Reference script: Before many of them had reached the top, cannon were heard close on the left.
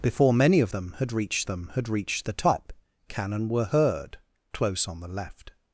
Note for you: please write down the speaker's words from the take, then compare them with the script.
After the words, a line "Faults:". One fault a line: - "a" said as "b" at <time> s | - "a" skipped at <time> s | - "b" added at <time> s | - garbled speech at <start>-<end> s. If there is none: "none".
Before many of them had reached them had reached the top, cannon were heard close on the left.
Faults:
- "them had reached" added at 1.5 s